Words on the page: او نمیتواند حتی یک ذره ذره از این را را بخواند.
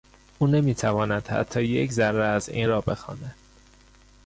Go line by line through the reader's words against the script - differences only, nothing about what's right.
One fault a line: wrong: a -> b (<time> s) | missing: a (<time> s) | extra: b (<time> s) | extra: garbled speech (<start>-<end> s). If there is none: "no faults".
missing: ذره (2.2 s)
missing: را (2.8 s)